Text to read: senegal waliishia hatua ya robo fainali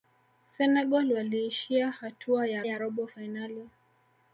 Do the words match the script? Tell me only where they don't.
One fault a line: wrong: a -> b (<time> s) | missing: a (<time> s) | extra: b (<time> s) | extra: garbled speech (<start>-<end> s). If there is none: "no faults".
extra: ya (2.6 s)